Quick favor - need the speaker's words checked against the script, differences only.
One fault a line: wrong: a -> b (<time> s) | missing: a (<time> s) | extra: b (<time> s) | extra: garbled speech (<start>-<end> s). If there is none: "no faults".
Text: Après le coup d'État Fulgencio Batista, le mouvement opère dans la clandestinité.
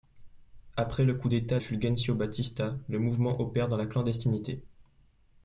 no faults